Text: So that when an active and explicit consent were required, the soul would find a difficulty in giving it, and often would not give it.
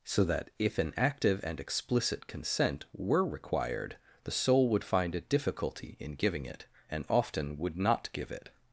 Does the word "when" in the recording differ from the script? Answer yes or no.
yes